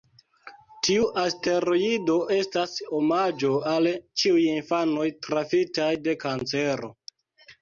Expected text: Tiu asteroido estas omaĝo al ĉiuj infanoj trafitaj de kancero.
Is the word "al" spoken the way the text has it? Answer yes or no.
yes